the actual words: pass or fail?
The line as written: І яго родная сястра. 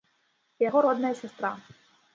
pass